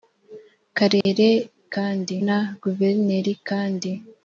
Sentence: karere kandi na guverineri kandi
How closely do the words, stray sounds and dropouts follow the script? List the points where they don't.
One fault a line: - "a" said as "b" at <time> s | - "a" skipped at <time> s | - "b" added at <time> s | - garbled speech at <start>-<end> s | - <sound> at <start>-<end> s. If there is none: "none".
- dropout at 1.0-1.1 s